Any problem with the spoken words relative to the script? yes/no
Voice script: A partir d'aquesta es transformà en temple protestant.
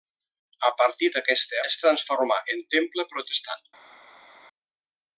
no